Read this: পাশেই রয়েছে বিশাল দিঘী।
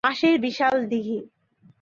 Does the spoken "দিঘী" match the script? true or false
true